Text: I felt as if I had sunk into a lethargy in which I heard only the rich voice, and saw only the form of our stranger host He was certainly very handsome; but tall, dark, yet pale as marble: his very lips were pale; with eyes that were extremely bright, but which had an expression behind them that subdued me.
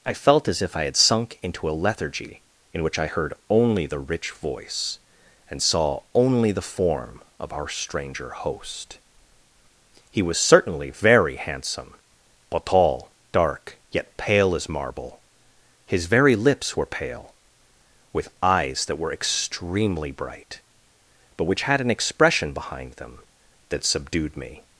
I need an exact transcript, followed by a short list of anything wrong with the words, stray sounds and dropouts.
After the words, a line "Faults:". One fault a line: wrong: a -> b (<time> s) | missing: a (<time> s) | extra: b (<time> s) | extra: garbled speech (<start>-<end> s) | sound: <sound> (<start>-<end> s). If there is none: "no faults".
I felt as if I had sunk into a lethargy in which I heard only the rich voice, and saw only the form of our stranger host He was certainly very handsome; but tall, dark, yet pale as marble: his very lips were pale; with eyes that were extremely bright, but which had an expression behind them that subdued me.
Faults:
no faults